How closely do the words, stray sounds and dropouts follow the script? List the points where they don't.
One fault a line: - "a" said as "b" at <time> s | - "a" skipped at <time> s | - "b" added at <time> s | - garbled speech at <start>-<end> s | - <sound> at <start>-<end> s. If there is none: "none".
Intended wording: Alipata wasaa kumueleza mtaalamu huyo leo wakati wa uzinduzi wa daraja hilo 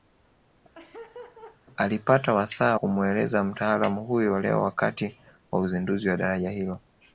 - laugh at 0.7-1.6 s